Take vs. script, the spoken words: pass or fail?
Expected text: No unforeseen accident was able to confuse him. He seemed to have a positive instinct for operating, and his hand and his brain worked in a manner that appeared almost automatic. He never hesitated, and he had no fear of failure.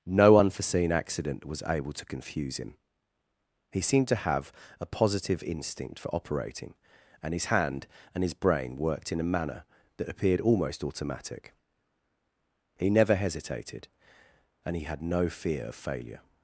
pass